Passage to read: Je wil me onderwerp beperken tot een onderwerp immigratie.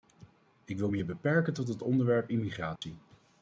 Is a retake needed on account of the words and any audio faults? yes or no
yes